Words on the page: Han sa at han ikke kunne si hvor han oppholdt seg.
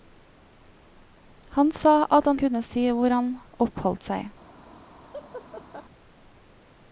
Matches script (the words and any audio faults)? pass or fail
fail